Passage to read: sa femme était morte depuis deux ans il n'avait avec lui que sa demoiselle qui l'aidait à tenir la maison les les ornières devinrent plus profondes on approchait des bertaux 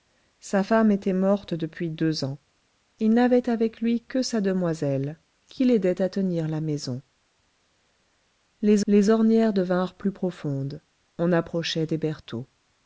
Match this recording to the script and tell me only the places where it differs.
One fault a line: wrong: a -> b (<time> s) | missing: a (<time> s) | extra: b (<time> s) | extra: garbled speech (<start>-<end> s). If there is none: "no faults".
no faults